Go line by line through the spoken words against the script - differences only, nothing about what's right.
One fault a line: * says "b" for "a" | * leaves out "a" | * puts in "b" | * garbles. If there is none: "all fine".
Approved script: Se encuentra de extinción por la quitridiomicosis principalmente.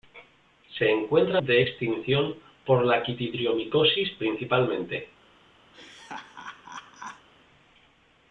all fine